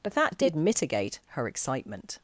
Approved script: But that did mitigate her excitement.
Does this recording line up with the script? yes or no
yes